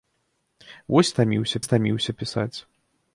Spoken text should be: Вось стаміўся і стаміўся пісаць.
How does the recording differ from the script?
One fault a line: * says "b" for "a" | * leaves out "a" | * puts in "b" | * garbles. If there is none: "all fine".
all fine